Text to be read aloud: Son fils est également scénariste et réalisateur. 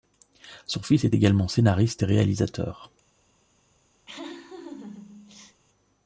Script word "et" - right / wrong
right